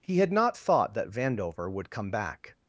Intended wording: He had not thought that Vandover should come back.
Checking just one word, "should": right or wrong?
wrong